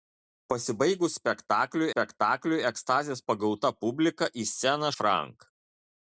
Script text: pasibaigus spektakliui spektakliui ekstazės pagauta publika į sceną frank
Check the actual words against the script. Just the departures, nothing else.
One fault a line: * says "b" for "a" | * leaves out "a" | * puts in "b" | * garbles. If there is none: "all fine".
all fine